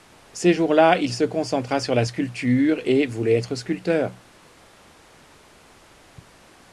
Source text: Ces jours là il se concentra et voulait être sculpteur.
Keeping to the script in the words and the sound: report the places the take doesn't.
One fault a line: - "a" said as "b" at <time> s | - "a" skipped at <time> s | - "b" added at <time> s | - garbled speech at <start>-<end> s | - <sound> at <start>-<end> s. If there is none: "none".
- "sur la sculpture" added at 1.8 s